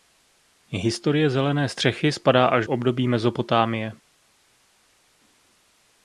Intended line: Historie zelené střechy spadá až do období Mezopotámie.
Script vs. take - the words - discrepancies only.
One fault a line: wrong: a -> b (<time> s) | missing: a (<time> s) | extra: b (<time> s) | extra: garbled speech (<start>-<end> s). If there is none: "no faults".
missing: do (2.7 s)